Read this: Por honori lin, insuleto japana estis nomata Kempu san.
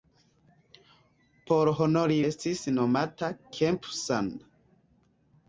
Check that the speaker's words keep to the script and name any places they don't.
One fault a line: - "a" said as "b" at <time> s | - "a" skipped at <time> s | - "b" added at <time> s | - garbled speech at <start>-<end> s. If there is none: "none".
- "lin insuleto japana" skipped at 2.2 s